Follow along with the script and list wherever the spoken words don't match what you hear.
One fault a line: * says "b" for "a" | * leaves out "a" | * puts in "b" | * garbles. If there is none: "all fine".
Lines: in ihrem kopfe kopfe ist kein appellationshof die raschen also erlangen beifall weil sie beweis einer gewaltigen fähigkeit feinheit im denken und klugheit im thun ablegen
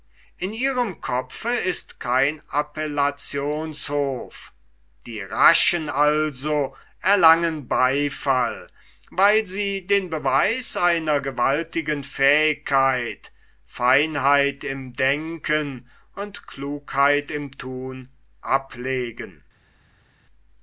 * leaves out "kopfe"
* puts in "den"